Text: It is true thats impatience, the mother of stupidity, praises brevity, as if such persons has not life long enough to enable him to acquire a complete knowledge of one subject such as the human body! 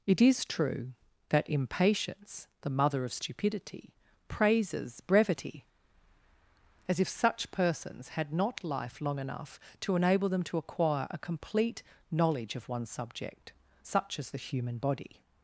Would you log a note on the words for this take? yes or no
yes